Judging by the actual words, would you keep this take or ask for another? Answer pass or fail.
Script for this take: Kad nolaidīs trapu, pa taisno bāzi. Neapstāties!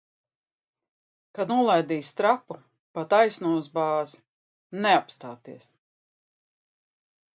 fail